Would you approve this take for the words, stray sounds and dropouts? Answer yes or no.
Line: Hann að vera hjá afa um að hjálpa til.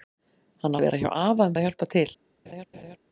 no